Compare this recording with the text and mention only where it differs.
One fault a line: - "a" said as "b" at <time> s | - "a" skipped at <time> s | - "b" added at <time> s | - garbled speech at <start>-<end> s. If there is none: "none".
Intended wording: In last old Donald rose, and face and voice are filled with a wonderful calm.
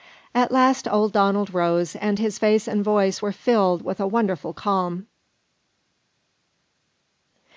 - "In" said as "At" at 0.3 s
- "his" added at 2.2 s
- "are" said as "were" at 3.2 s